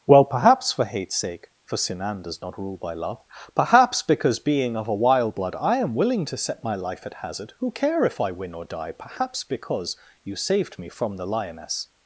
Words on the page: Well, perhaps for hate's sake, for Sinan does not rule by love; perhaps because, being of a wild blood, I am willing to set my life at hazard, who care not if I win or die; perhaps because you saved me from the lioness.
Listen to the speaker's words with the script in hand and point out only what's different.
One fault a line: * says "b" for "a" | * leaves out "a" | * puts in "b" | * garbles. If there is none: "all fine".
* leaves out "not"